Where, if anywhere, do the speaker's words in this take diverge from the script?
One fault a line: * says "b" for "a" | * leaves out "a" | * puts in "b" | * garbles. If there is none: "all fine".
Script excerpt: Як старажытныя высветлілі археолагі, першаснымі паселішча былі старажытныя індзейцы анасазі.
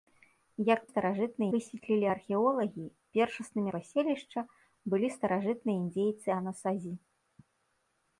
all fine